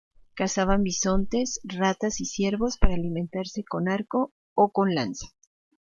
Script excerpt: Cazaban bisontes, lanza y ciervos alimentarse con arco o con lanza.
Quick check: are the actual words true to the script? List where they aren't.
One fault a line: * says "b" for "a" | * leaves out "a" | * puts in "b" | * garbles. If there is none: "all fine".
* says "ratas" for "lanza"
* puts in "para"